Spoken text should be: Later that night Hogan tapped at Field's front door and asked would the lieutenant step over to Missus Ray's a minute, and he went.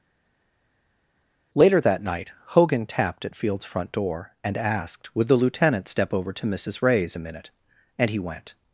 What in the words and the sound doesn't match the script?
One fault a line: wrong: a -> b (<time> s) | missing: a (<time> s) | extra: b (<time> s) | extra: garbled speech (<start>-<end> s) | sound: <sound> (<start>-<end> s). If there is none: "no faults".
no faults